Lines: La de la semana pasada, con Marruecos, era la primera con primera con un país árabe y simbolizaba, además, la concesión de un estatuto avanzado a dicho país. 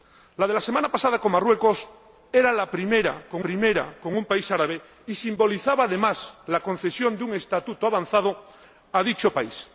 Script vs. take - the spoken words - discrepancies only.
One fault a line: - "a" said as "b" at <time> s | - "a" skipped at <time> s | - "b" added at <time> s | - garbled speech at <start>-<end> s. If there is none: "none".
none